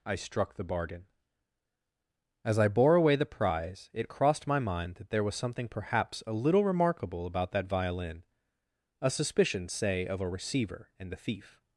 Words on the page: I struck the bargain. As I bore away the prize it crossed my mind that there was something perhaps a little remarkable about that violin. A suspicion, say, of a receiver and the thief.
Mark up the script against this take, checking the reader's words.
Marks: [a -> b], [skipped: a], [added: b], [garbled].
I struck the bargain. As I bore away the prize it crossed my mind that there was something perhaps a little remarkable about that violin. A suspicion, say, of a receiver and the thief.